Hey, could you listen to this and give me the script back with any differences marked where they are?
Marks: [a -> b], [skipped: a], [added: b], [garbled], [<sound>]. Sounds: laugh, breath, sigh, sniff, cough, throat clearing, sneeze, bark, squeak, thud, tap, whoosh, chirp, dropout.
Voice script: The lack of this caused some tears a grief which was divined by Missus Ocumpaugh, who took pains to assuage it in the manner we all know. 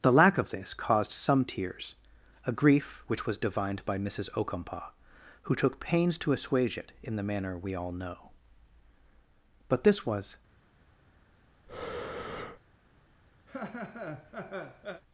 The lack of this caused some tears a grief which was divined by Missus Ocumpaugh, who took pains to assuage it in the manner we all know. [added: But this was] [breath] [laugh]